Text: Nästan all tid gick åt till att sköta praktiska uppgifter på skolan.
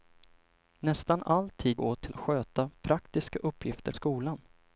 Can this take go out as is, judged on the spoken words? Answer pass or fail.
fail